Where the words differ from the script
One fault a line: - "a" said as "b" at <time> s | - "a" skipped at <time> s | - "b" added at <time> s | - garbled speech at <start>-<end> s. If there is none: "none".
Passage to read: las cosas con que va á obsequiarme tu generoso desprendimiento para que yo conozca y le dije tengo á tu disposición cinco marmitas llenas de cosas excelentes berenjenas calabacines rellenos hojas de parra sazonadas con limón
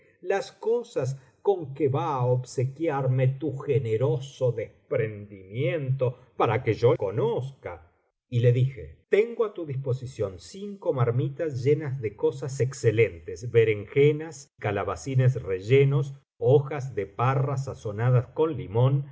none